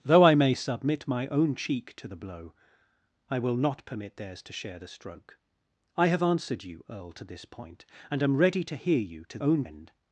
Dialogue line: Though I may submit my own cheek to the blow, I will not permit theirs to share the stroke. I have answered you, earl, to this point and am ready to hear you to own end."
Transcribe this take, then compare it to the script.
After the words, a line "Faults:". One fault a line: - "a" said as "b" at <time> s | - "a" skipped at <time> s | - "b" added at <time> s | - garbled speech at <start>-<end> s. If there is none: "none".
Though I may submit my own cheek to the blow, I will not permit theirs to share the stroke. I have answered you, earl, to this point and am ready to hear you to own end."
Faults:
none